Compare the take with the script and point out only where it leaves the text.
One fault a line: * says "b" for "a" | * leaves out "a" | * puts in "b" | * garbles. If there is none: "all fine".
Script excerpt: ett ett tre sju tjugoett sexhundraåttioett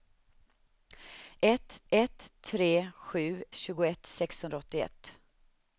all fine